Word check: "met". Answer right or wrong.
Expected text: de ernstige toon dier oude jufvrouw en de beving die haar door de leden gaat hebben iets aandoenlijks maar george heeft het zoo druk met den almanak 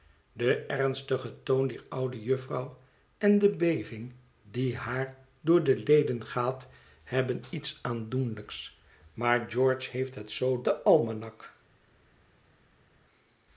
wrong